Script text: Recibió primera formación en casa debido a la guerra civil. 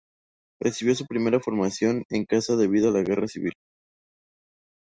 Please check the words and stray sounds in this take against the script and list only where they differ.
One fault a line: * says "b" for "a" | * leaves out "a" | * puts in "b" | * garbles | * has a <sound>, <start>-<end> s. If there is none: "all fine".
* puts in "su"